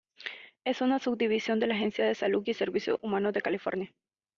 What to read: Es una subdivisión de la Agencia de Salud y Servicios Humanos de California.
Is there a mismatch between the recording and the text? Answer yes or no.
no